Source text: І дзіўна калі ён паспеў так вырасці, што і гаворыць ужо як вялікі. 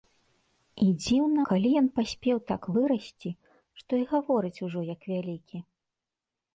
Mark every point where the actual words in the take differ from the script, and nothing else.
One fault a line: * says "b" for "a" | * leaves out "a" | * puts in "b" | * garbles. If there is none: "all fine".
all fine